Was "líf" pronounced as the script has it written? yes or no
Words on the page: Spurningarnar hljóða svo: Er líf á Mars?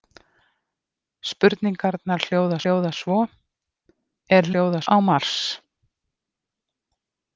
no